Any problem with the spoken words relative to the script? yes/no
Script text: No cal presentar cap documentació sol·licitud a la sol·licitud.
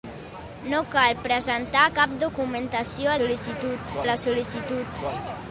no